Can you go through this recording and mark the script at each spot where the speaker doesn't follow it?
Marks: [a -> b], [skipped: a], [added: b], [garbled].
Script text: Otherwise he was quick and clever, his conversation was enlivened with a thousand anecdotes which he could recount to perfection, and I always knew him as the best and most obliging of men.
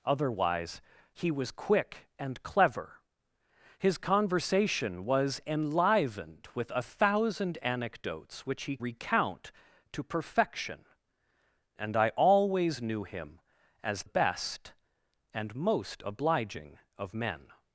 Otherwise he was quick and clever, his conversation was enlivened with a thousand anecdotes which he [skipped: could] recount to perfection, and I always knew him as [skipped: the] best and most obliging of men.